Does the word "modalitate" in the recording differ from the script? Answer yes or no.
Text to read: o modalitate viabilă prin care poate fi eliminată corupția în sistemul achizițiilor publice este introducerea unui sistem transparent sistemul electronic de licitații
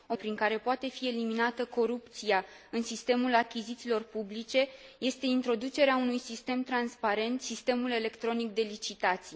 yes